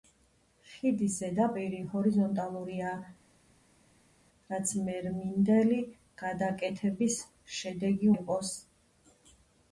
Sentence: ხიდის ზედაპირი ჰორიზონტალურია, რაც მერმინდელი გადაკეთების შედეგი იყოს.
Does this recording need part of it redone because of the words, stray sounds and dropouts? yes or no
no